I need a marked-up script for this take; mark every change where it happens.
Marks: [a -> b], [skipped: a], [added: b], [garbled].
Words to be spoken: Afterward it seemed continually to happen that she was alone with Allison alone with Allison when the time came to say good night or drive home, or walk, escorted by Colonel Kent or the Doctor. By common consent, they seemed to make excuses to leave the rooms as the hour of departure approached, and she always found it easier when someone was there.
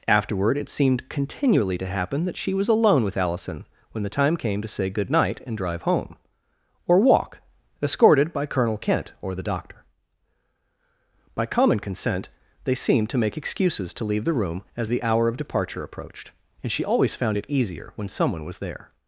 Afterward it seemed continually to happen that she was alone with Allison [skipped: alone with Allison] when the time came to say good night [or -> and] drive home, or walk, escorted by Colonel Kent or the Doctor. By common consent, they seemed to make excuses to leave the [rooms -> room] as the hour of departure approached, and she always found it easier when someone was there.